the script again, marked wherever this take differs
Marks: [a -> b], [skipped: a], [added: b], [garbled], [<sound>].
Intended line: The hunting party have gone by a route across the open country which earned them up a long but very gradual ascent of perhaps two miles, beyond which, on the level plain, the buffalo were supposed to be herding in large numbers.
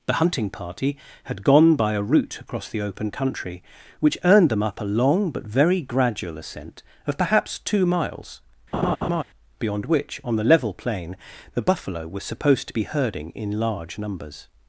The hunting party [have -> had] gone by a route across the open country which earned them up a long but very gradual ascent of perhaps two miles, [laugh] beyond which, on the level plain, the buffalo were supposed to be herding in large numbers.